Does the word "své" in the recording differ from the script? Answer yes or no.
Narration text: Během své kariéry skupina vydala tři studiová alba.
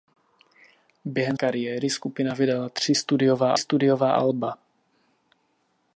yes